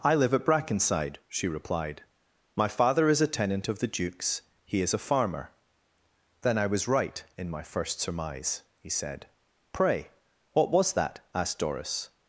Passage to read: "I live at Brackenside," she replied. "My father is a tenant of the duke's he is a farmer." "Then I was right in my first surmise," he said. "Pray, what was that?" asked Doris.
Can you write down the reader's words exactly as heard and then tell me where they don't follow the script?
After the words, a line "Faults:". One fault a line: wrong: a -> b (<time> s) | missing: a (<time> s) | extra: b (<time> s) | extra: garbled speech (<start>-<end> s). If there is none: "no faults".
"I live at Brackenside," she replied. "My father is a tenant of the duke's he is a farmer." "Then I was right in my first surmise," he said. "Pray, what was that?" asked Doris.
Faults:
no faults